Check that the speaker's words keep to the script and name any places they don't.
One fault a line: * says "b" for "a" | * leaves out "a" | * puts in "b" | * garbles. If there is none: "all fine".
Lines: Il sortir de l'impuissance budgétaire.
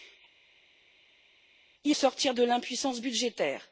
all fine